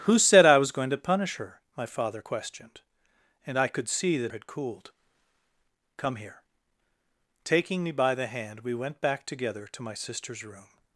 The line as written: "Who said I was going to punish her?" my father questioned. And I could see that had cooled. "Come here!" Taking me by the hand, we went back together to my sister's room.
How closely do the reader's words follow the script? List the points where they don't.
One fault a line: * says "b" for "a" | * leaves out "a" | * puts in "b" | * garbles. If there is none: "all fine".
all fine